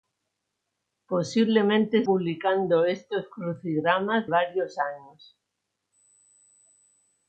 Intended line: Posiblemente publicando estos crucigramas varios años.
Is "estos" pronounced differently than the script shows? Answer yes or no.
no